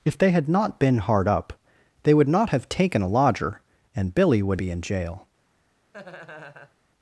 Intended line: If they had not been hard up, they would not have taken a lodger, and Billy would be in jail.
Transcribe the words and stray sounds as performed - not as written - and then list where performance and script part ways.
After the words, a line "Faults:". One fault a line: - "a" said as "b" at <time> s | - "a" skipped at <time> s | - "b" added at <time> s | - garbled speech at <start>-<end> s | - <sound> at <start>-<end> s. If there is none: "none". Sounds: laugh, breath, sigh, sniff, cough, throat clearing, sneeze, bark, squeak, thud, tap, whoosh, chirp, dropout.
If they had not been hard up, they would not have taken a lodger, and Billy would be in jail.
Faults:
- laugh at 5.9-6.8 s